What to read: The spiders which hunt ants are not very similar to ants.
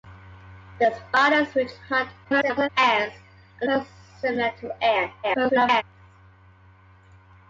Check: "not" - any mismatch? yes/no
yes